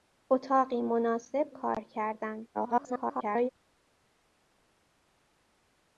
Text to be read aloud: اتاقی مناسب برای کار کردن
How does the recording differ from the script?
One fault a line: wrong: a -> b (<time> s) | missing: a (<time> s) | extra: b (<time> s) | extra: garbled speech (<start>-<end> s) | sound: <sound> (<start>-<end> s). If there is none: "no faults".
missing: برای (1.5 s)
extra: garbled speech (2.5-3.5 s)